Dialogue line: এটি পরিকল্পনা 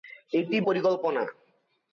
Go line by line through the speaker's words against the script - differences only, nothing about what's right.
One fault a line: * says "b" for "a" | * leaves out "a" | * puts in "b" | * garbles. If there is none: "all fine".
all fine